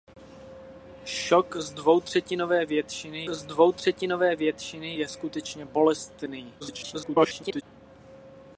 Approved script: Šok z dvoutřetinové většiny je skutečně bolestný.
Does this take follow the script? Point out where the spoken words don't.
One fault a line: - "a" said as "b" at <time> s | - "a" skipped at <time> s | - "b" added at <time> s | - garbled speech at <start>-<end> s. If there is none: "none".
- "z dvoutřetinové většiny" added at 3.3 s
- garbled speech at 6.6-7.6 s